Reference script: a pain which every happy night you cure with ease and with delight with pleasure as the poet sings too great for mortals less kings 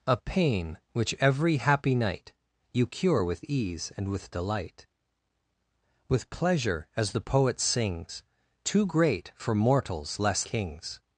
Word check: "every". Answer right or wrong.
right